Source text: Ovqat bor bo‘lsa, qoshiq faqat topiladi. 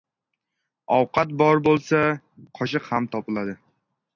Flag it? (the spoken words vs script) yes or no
yes